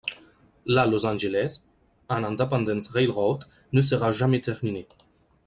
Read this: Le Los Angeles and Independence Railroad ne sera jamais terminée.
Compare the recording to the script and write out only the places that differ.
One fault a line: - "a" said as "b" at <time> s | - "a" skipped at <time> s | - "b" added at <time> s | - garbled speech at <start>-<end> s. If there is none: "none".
- "Le" said as "La" at 0.7 s